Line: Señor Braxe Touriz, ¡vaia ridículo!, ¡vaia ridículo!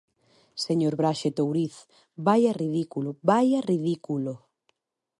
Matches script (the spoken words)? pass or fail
pass